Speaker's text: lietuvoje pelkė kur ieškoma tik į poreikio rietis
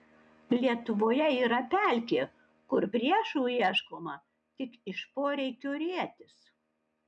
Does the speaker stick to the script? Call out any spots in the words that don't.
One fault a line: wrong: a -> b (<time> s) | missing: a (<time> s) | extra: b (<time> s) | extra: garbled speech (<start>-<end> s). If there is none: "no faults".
extra: yra (1.5 s)
extra: priešų (2.9 s)
wrong: į -> iš (4.9 s)